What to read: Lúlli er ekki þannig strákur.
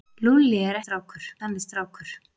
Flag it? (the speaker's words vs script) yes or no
yes